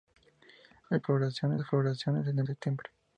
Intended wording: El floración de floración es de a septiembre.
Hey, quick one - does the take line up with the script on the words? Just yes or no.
yes